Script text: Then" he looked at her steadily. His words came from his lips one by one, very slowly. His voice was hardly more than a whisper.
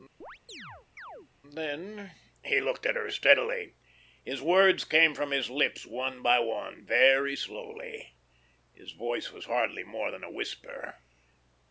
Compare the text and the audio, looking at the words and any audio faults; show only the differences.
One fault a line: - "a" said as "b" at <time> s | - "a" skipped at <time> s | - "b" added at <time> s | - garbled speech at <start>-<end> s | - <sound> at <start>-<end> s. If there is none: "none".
- chirp at 0.2-1.3 s